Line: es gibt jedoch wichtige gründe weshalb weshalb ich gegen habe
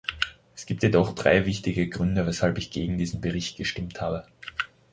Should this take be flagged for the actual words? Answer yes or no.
yes